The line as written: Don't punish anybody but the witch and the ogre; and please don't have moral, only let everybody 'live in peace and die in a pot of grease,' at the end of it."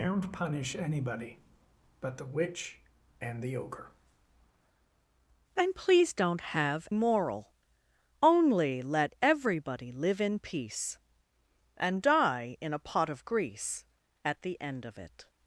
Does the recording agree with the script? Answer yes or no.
yes